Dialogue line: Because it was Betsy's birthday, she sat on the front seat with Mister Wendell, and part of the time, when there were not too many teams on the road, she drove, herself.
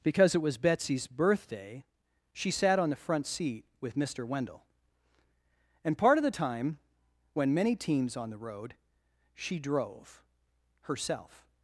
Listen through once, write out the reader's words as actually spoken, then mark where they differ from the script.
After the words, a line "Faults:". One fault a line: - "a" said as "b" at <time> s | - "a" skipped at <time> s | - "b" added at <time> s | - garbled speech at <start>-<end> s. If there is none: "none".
Because it was Betsy's birthday, she sat on the front seat with Mister Wendell, and part of the time, when many teams on the road, she drove, herself.
Faults:
- "there were not too" skipped at 7.5 s